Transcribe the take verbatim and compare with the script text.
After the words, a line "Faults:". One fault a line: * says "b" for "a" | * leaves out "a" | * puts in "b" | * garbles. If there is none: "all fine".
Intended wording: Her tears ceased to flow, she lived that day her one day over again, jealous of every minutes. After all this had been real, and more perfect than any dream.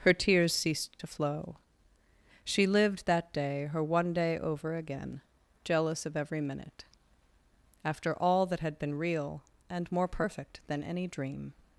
Her tears ceased to flow, she lived that day her one day over again, jealous of every minute. After all that had been real, and more perfect than any dream.
Faults:
* says "minute" for "minutes"
* says "that" for "this"